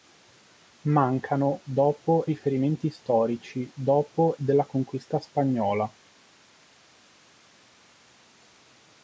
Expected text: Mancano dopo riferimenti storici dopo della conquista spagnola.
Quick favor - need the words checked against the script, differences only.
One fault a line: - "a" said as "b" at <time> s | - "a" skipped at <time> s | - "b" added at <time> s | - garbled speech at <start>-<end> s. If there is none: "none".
none